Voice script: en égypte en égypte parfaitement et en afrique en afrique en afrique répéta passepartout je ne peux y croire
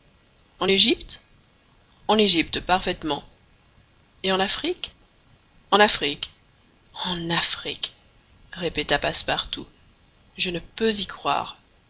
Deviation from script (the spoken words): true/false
false